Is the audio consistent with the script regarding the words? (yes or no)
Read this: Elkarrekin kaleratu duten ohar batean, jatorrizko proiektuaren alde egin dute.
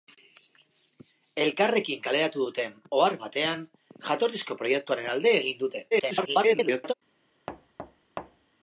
no